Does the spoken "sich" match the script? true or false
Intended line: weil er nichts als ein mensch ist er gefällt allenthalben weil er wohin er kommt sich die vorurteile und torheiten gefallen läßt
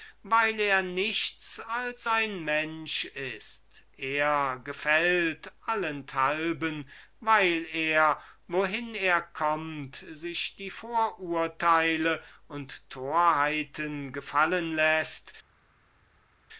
true